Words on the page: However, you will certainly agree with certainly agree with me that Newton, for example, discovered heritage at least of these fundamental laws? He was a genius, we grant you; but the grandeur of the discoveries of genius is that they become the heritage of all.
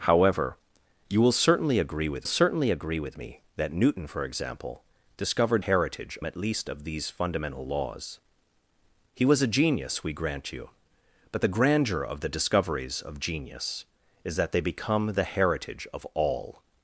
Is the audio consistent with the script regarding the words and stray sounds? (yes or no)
yes